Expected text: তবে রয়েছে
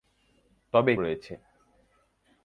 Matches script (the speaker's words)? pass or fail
pass